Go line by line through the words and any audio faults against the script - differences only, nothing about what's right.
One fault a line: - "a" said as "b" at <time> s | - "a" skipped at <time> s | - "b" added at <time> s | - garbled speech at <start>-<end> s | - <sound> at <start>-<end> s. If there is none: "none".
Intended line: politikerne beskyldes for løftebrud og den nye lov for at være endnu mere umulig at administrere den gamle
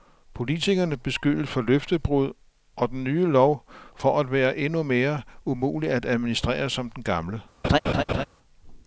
- "som" added at 6.7 s
- laugh at 7.6-8.3 s